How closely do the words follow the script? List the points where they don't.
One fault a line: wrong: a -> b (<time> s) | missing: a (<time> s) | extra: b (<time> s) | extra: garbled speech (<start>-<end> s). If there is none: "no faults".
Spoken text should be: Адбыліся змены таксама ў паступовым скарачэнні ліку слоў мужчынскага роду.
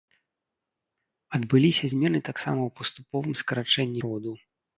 missing: ліку слоў мужчынскага (4.0 s)